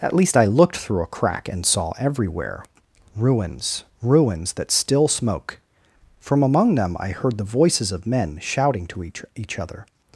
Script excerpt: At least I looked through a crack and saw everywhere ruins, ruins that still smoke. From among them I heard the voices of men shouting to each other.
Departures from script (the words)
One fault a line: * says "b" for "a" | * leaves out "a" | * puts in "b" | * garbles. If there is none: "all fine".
* puts in "each"